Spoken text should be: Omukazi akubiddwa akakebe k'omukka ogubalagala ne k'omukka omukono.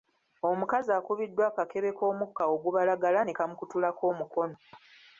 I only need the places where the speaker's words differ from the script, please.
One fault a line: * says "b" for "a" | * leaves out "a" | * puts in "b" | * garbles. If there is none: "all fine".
* says "kamukutulako" for "k'omukka"